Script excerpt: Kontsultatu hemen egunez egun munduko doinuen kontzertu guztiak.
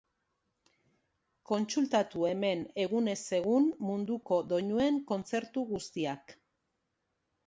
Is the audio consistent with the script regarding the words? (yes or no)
yes